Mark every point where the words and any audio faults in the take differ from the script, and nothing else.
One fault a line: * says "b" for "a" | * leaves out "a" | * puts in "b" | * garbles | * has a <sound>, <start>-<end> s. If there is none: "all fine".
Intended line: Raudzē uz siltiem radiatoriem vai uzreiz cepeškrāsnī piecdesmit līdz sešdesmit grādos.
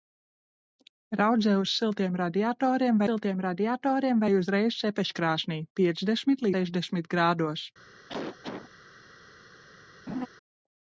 * puts in "siltiem radiatoriem"
* leaves out "līdz"
* has a cough, 8.1-8.7 s
* has a laugh, 10.1-10.3 s